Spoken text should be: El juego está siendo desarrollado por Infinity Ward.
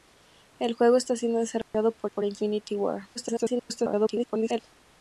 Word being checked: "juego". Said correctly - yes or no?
yes